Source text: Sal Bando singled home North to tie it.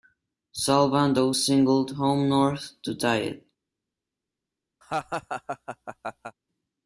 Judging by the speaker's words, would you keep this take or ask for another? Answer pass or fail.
pass